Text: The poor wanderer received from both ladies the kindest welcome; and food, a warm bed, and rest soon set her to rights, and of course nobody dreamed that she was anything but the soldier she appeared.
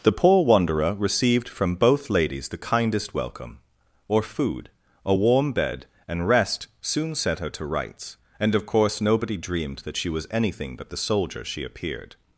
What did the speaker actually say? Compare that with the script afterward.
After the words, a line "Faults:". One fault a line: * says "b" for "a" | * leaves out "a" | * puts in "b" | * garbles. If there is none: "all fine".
The poor wanderer received from both ladies the kindest welcome; or food, a warm bed, and rest soon set her to rights, and of course nobody dreamed that she was anything but the soldier she appeared.
Faults:
* says "or" for "and"